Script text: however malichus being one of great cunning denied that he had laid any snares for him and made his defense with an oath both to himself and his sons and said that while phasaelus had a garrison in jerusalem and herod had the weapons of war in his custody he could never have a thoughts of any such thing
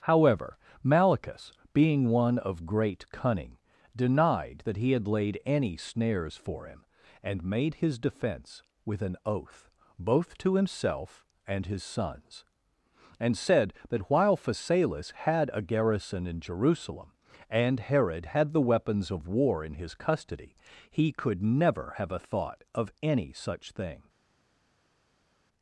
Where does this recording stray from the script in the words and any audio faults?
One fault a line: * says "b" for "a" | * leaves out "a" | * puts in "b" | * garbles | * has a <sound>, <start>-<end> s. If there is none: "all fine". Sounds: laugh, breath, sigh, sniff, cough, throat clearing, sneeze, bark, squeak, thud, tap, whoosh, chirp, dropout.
* says "thought" for "thoughts"